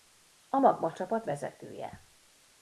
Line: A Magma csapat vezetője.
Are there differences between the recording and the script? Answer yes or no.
no